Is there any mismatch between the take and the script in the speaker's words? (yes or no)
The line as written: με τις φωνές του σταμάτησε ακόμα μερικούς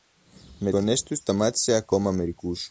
yes